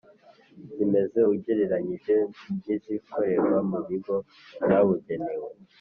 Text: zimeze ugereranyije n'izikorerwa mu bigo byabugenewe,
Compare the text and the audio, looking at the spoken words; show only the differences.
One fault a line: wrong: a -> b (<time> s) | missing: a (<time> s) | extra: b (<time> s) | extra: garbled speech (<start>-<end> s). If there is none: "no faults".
no faults